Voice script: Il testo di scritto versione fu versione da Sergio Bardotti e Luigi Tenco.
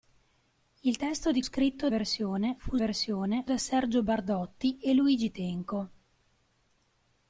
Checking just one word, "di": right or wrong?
right